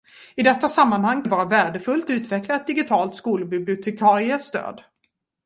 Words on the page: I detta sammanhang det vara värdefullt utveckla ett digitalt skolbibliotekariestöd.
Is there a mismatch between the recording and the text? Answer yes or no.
no